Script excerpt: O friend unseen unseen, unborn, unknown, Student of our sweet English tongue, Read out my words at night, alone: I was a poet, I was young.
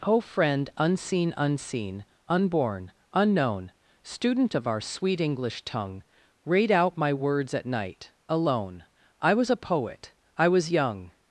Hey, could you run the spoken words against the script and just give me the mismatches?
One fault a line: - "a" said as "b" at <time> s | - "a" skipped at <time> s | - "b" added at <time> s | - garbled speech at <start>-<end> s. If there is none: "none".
none